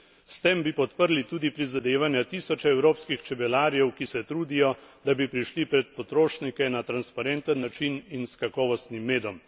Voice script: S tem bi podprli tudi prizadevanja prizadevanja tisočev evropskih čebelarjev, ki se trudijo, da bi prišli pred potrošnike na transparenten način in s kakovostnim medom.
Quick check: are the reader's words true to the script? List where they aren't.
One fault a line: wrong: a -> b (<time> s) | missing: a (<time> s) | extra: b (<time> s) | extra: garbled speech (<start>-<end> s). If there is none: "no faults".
missing: prizadevanja (2.2 s)